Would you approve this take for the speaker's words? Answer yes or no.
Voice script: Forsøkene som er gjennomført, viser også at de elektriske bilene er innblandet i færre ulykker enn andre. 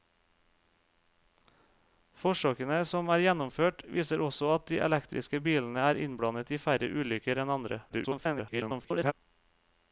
no